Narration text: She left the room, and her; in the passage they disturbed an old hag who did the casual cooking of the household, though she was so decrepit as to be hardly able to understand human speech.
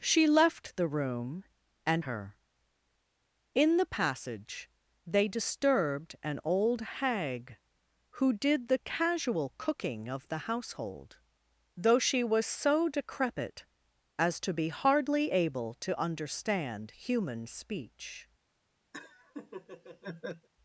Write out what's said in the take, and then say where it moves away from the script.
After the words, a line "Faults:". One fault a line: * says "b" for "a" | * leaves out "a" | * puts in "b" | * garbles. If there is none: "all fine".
She left the room, and her; in the passage they disturbed an old hag who did the casual cooking of the household, though she was so decrepit as to be hardly able to understand human speech.
Faults:
all fine